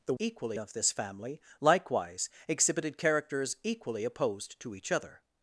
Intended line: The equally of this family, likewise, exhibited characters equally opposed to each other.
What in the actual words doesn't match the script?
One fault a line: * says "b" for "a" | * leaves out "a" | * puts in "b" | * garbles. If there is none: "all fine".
all fine